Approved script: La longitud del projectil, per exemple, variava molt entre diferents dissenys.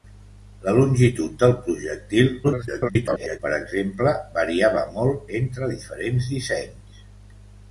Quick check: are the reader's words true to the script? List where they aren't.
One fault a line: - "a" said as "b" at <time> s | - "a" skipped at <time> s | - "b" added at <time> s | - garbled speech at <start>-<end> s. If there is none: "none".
- garbled speech at 2.4-3.4 s